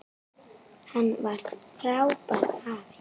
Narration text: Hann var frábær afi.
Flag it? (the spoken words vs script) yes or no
no